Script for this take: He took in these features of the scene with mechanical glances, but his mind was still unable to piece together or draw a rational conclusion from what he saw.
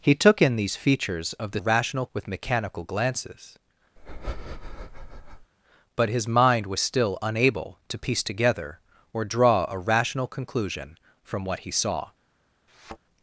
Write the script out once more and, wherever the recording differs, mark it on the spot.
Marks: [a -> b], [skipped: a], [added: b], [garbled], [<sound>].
He took in these features of the [scene -> rational] with mechanical glances, [breath] but his mind was still unable to piece together or draw a rational conclusion from what he saw. [thud]